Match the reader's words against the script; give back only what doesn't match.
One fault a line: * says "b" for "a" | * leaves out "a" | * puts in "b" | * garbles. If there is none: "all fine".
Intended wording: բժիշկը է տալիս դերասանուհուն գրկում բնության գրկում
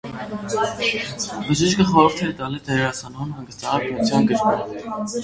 * puts in "խորհուրդ"
* says "հանգստանալ" for "գրկում"